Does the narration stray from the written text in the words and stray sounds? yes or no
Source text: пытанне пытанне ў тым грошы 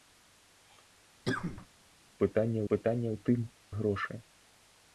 yes